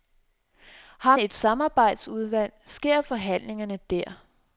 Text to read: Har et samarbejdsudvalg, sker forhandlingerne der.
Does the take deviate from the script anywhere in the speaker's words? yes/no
no